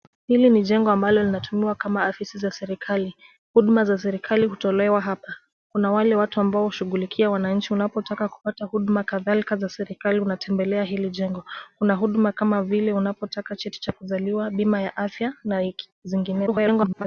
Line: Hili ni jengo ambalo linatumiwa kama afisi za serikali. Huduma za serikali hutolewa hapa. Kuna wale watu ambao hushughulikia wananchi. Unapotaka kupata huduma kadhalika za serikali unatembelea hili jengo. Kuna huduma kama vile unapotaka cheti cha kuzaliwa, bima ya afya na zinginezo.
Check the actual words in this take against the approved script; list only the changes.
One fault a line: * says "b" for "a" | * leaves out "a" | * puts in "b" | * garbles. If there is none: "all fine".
* garbles